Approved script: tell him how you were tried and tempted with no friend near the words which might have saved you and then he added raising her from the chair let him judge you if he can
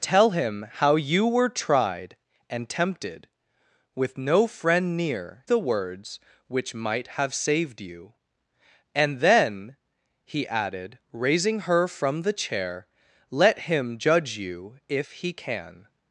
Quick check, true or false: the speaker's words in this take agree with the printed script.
true